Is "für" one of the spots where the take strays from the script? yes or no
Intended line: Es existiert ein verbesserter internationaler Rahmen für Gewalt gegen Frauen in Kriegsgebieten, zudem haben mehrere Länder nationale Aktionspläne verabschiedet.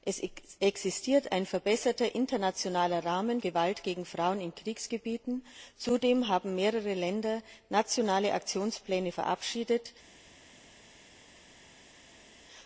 yes